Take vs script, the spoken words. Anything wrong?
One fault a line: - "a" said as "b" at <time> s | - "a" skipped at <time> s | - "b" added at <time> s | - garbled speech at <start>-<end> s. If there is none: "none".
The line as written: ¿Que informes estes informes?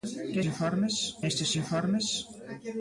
none